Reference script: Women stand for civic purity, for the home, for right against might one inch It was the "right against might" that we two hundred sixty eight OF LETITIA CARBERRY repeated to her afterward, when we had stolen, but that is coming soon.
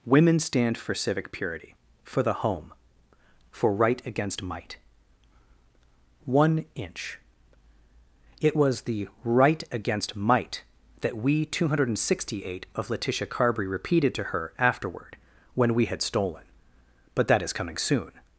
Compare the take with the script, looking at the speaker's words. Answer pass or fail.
pass